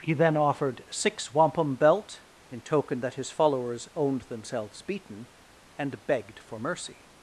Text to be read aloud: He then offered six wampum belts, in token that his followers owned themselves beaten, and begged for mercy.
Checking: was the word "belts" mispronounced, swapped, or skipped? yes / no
yes